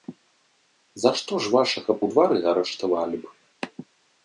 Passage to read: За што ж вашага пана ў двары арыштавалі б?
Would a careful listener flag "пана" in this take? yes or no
yes